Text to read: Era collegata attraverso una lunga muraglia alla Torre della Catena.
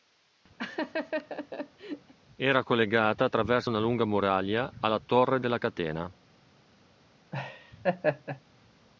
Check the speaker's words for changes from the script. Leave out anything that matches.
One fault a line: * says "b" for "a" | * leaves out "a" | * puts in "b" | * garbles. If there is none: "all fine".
all fine